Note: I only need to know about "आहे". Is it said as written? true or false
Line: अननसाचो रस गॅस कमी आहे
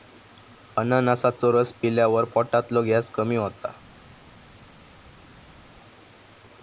false